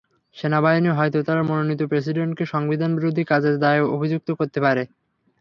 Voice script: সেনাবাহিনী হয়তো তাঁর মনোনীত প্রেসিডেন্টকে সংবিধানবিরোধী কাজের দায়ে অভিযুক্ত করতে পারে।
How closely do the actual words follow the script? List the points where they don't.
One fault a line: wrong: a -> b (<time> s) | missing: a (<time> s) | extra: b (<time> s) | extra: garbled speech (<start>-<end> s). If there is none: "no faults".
no faults